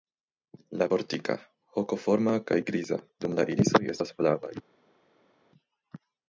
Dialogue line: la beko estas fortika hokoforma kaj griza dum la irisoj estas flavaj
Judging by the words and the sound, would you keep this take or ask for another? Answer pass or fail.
fail